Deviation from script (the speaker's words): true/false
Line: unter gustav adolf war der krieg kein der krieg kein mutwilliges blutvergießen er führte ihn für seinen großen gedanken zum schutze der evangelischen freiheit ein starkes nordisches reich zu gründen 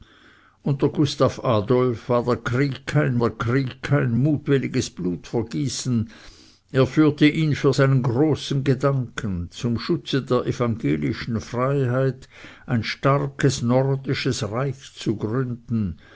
false